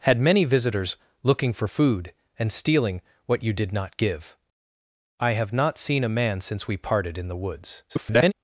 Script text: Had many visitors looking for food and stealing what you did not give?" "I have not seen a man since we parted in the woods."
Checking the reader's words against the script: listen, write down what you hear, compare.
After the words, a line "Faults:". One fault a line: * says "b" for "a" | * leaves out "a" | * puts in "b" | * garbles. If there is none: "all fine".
Had many visitors looking for food and stealing what you did not give?" "I have not seen a man since we parted in the woods." [garbled]
Faults:
* garbles